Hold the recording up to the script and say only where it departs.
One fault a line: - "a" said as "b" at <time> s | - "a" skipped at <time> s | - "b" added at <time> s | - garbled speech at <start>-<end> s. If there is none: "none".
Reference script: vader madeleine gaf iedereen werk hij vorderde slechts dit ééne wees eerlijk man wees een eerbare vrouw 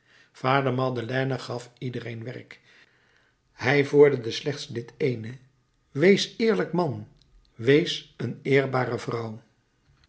none